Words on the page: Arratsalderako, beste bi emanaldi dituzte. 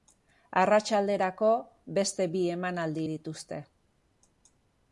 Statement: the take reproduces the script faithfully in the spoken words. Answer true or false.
true